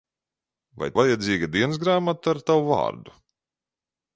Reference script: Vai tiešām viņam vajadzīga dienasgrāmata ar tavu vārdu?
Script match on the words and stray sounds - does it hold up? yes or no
no